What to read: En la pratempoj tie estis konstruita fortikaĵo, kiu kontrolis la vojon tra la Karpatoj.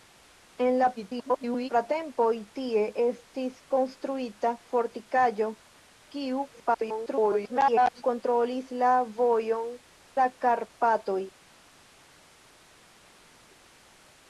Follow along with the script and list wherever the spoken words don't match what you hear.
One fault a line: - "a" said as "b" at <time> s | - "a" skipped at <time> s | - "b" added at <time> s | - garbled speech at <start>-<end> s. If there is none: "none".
- garbled speech at 1.0-1.7 s
- garbled speech at 6.5-8.0 s
- "tra" skipped at 9.7 s